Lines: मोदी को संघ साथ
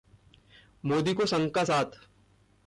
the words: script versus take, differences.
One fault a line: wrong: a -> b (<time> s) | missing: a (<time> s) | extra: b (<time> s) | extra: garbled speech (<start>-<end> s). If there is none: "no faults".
extra: का (1.5 s)